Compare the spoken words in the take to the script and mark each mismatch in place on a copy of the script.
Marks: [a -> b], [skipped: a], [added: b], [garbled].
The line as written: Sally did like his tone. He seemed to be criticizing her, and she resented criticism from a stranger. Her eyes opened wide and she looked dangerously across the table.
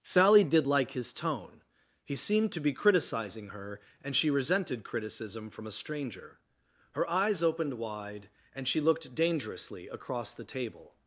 Sally did like his tone. He seemed to be criticizing her, and she resented criticism from a stranger. Her eyes opened wide and she looked dangerously across the table.